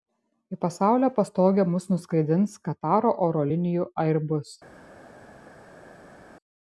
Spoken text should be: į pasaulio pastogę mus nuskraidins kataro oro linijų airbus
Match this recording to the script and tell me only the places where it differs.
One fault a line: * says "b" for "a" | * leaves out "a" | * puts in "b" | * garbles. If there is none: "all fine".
all fine